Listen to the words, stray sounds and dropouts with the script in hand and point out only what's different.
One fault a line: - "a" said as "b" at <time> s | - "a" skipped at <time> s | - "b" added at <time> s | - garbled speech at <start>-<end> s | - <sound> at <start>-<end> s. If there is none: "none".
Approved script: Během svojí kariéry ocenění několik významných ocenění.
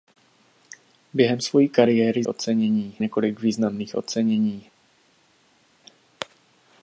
none